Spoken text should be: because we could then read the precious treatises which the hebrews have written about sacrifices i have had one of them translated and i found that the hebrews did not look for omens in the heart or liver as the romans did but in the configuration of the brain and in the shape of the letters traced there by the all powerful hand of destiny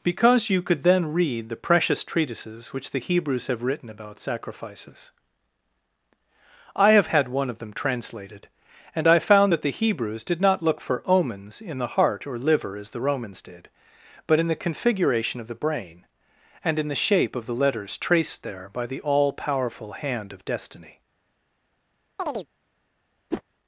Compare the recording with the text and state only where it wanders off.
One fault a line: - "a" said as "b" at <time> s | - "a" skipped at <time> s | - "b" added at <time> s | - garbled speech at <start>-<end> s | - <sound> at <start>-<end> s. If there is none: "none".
- "we" said as "you" at 0.5 s
- chirp at 22.2-22.5 s
- whoosh at 23.3-23.4 s